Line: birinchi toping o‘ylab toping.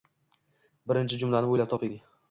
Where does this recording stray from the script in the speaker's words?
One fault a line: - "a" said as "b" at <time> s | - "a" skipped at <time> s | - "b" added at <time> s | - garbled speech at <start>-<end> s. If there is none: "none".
- "toping" said as "jumlani" at 1.2 s